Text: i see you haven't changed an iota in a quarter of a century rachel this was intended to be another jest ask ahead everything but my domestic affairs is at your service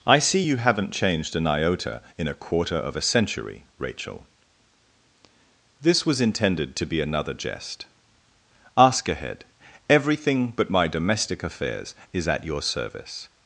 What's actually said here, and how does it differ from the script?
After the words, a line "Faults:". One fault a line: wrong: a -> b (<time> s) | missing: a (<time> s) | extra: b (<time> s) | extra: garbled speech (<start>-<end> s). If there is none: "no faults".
i see you haven't changed an iota in a quarter of a century rachel this was intended to be another jest ask ahead everything but my domestic affairs is at your service
Faults:
no faults